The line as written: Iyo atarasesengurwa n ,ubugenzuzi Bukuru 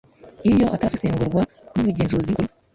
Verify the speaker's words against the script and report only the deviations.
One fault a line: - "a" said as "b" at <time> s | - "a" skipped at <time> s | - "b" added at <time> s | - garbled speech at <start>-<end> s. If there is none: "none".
none